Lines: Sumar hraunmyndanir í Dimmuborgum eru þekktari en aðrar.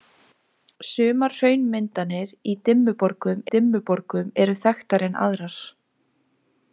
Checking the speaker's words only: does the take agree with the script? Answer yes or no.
no